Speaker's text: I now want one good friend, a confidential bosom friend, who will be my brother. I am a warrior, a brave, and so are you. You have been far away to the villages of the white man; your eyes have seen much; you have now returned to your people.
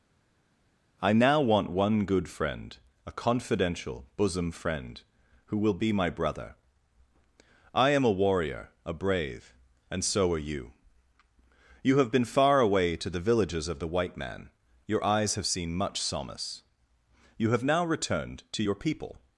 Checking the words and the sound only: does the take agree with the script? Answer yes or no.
no